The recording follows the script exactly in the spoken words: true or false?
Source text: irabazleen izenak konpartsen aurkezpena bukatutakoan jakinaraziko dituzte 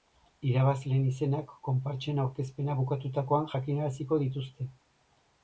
true